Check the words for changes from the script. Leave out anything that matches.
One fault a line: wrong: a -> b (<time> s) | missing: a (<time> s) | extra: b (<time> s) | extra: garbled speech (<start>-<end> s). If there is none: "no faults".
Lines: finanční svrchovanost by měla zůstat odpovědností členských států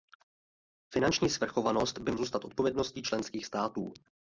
missing: měla (2.1 s)